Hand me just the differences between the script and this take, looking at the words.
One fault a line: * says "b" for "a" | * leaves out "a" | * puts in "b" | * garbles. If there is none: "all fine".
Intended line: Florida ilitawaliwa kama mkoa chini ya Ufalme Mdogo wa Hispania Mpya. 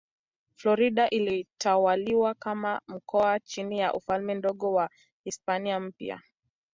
all fine